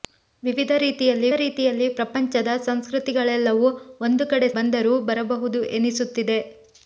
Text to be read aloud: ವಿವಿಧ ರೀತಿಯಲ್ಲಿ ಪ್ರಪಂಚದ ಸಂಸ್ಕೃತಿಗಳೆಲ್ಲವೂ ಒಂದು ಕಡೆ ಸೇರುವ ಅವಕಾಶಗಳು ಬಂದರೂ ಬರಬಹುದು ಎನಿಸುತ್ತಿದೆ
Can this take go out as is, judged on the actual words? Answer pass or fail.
fail